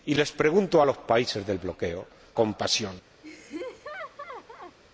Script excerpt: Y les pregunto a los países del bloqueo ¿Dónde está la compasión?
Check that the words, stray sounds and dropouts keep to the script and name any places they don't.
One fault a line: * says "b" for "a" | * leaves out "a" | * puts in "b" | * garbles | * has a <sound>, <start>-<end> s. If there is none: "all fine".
* leaves out "Dónde está la"
* has a laugh, 3.2-4.8 s